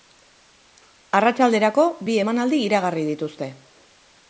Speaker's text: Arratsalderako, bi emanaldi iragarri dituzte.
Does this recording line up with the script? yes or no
yes